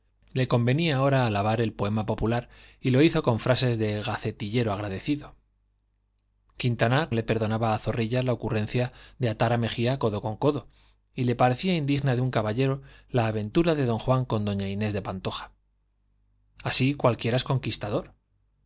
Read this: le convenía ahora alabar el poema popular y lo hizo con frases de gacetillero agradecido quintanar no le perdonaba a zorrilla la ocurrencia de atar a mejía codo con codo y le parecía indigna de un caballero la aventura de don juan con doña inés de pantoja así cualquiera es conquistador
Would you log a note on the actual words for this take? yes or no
yes